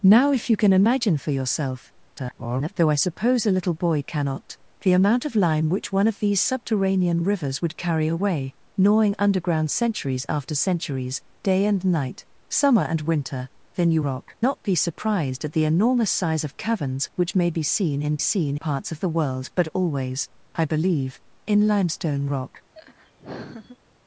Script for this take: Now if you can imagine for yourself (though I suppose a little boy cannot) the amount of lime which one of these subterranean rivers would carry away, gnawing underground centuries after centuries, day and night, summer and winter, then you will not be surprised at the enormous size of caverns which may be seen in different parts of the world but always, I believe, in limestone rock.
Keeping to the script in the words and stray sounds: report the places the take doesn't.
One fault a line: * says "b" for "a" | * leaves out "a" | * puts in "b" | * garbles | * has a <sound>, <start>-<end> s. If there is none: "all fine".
* garbles
* says "rock" for "will"
* says "seen" for "different"
* has a laugh, 22.7-23.8 s